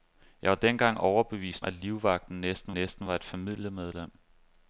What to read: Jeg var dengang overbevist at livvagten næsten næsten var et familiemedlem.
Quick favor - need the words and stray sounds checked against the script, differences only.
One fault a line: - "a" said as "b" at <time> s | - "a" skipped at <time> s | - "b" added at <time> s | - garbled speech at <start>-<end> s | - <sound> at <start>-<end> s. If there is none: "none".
none